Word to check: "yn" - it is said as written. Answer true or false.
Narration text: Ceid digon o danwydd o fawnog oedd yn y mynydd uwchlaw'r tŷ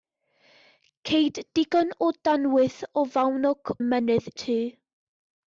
false